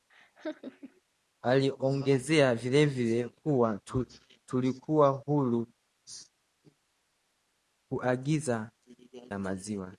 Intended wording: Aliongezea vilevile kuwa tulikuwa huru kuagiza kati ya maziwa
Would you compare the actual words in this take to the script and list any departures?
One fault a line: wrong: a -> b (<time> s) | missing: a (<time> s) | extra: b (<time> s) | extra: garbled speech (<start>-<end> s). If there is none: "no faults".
missing: kati (8.7 s)